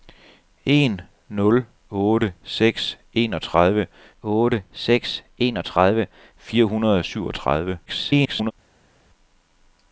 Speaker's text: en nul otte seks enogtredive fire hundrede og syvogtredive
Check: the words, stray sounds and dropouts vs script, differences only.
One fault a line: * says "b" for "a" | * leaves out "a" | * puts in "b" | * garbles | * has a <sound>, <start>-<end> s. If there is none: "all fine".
* puts in "otte seks enogtredive"
* garbles